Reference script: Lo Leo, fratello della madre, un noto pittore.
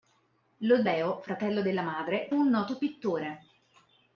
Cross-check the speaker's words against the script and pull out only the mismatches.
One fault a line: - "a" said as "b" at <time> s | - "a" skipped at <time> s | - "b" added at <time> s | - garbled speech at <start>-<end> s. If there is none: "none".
none